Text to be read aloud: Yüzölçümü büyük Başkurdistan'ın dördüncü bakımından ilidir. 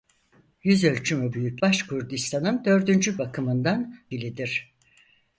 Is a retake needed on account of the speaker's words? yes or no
no